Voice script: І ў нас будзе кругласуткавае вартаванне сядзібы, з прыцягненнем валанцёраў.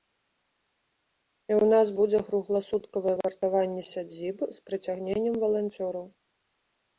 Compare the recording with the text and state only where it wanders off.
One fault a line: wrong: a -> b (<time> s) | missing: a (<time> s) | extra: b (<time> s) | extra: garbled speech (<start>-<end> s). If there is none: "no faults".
no faults